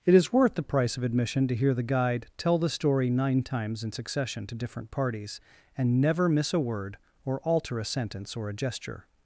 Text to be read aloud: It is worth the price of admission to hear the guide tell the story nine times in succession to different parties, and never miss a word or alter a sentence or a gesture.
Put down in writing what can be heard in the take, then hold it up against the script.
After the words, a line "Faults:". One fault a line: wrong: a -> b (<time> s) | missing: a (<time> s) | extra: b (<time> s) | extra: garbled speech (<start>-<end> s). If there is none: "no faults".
It is worth the price of admission to hear the guide tell the story nine times in succession to different parties, and never miss a word or alter a sentence or a gesture.
Faults:
no faults